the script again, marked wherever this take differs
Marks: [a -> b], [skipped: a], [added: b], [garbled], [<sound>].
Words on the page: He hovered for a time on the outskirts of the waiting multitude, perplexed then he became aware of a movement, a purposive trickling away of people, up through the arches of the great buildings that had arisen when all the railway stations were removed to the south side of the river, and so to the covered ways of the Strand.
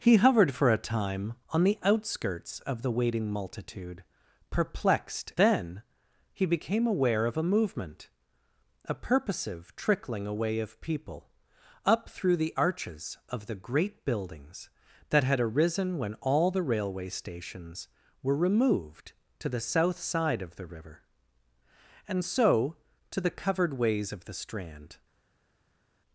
He hovered for a time on the outskirts of the waiting multitude, perplexed then he became aware of a movement, a purposive trickling away of people, up through the arches of the great buildings that had arisen when all the railway stations were removed to the south side of the river, and so to the covered ways of the Strand.